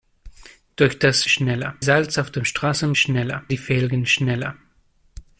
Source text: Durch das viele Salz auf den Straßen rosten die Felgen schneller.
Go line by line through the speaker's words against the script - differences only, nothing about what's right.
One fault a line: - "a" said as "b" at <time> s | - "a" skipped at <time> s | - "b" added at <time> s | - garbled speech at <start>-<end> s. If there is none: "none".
- "viele" said as "schneller" at 1.2 s
- "rosten" said as "schneller" at 2.9 s